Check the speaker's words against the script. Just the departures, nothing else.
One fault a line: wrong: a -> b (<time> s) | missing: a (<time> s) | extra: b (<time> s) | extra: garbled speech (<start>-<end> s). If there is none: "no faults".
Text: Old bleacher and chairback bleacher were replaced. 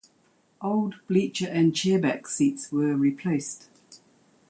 wrong: bleacher -> seats (2.2 s)